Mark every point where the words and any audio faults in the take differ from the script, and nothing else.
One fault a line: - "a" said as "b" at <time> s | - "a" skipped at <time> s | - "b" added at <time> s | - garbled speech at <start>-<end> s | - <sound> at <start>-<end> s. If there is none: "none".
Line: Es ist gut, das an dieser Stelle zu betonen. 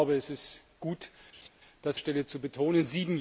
- laugh at 1.3-1.5 s
- "an dieser" skipped at 2.0 s